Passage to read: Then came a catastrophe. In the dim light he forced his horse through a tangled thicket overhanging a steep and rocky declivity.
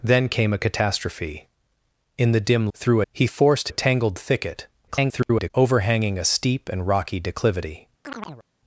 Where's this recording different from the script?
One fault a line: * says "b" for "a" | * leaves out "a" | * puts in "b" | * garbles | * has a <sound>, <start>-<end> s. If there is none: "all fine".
* says "through" for "light"
* leaves out "his horse through"
* garbles
* has a chirp, 8.0-8.5 s